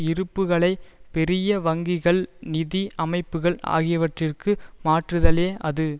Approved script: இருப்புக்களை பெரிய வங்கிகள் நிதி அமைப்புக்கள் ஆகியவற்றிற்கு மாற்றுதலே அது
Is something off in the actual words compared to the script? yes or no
no